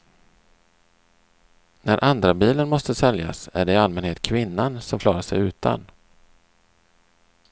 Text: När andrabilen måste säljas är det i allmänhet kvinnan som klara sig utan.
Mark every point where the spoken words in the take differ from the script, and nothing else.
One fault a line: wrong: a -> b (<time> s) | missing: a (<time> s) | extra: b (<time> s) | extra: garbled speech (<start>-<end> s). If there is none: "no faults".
no faults